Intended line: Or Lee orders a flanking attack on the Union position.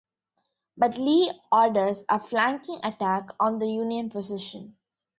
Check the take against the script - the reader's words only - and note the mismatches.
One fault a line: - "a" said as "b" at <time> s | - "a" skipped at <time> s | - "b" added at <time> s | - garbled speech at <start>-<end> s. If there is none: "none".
- "Or" said as "But" at 0.8 s